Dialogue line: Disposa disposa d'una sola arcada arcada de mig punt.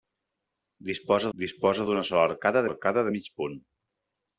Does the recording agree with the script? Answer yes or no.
yes